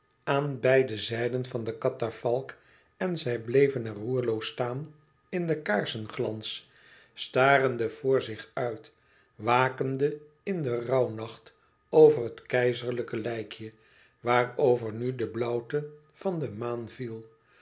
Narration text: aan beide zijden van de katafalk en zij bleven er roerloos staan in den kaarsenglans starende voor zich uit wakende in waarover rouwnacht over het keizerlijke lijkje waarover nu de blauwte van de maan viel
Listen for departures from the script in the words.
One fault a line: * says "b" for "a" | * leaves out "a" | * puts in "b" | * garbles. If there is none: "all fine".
* says "den" for "waarover"